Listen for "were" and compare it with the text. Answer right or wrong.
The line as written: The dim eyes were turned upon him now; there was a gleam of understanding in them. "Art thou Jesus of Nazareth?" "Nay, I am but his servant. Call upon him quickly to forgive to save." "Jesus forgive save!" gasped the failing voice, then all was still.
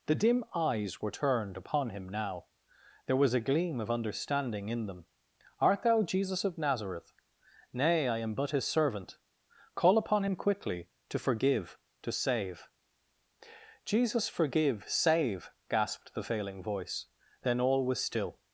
right